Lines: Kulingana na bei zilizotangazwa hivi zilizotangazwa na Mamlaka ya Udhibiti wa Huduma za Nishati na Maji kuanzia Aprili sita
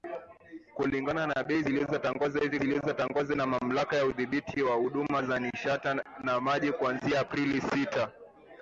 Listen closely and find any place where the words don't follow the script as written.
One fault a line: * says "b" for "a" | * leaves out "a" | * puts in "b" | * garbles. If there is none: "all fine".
all fine